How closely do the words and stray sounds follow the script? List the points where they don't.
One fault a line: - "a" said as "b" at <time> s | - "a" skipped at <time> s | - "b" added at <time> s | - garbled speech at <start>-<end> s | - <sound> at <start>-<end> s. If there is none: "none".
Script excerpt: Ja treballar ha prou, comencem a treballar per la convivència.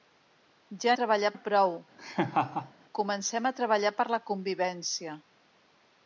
- laugh at 2.0-2.7 s